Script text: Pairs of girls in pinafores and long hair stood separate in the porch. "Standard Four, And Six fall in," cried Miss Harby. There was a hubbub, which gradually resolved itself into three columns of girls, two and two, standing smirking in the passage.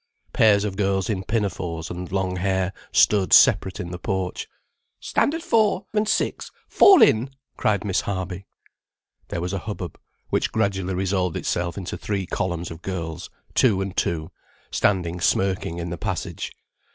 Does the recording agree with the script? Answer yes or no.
yes